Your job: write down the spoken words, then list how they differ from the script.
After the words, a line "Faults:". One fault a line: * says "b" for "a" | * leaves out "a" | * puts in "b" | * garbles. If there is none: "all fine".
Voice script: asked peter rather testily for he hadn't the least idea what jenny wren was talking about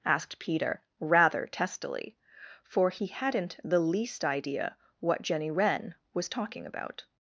asked peter rather testily for he hadn't the least idea what jenny wren was talking about
Faults:
all fine